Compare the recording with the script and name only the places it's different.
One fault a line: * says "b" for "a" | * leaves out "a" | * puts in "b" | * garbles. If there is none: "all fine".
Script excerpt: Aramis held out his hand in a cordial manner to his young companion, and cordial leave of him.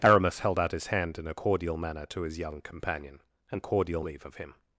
all fine